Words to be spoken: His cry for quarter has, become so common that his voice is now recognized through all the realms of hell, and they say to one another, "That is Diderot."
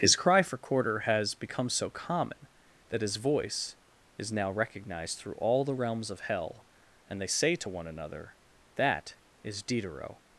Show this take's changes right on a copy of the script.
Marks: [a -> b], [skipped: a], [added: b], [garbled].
His cry for quarter has, become so common that his voice is now recognized through all the realms of hell, and they say to one another, "That is Diderot."